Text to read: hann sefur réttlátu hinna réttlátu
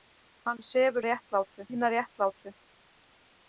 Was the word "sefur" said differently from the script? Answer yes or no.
no